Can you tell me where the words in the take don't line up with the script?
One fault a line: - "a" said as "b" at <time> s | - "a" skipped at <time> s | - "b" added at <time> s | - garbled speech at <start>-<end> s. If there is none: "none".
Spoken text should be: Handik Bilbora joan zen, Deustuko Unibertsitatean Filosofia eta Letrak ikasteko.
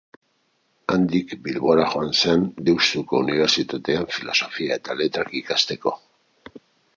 none